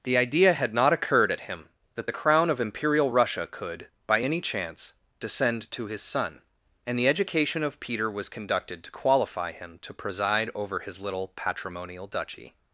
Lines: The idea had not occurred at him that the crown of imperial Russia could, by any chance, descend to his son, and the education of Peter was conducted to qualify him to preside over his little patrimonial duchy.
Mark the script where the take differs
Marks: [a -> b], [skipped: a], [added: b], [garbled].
The idea had not occurred at him that the crown of imperial Russia could, by any chance, descend to his son, and the education of Peter was conducted to qualify him to preside over his little patrimonial duchy.